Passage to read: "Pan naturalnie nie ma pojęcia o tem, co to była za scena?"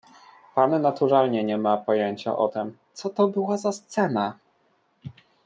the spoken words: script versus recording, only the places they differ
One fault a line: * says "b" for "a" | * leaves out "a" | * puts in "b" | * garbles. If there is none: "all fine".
all fine